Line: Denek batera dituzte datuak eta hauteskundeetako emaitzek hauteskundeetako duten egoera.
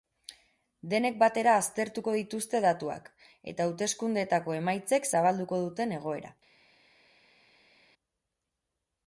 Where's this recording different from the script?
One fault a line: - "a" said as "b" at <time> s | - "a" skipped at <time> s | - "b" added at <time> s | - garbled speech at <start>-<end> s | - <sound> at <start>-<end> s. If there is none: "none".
- "aztertuko" added at 1.6 s
- "hauteskundeetako" said as "zabalduko" at 5.1 s